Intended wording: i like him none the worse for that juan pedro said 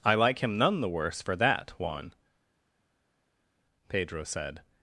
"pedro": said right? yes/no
yes